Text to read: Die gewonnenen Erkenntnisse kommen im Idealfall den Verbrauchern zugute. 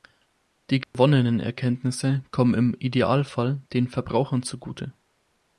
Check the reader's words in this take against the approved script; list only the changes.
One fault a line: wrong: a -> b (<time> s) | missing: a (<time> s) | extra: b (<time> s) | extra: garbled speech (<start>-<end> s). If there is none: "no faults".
no faults